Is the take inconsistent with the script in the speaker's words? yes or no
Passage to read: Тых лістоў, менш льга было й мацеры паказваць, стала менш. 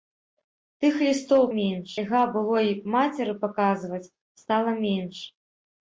no